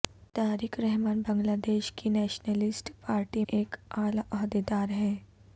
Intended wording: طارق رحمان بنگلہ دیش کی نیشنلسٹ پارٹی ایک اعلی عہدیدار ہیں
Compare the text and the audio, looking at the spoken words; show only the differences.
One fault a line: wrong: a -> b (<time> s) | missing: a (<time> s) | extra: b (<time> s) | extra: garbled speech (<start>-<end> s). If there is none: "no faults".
no faults